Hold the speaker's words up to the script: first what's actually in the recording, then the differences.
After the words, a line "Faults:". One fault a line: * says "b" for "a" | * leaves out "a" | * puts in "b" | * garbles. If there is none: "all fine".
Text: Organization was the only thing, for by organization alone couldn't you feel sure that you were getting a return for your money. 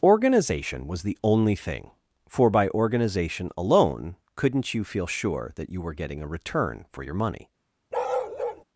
Organization was the only thing, for by organization alone couldn't you feel sure that you were getting a return for your money.
Faults:
all fine